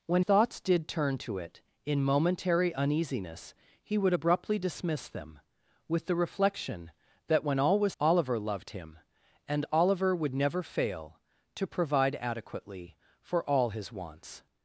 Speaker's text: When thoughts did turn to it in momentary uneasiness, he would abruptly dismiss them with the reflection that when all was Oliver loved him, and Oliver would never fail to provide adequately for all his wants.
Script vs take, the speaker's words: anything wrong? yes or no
no